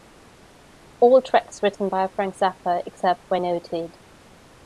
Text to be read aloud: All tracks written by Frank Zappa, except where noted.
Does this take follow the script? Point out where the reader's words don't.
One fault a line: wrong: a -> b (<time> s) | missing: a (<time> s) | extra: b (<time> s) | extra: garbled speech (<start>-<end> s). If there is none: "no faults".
no faults